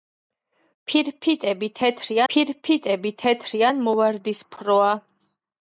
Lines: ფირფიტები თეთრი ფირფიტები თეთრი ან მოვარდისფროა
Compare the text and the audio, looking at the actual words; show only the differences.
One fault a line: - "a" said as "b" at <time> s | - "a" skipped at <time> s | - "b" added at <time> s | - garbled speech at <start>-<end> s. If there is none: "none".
none